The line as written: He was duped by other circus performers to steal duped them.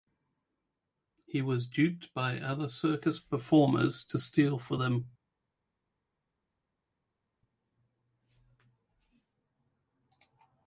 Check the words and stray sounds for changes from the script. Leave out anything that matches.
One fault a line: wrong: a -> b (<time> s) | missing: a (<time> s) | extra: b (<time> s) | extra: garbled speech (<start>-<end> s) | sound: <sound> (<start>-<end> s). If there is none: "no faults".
wrong: duped -> for (4.6 s)